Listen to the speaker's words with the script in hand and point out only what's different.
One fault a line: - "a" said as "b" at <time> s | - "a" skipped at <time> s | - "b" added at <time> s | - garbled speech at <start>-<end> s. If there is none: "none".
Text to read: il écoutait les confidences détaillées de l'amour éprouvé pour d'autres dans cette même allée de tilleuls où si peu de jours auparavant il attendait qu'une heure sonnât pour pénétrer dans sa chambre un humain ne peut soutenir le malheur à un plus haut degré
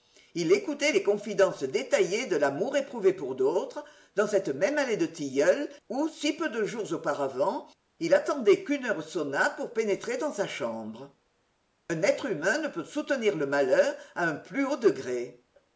- "être" added at 12.0 s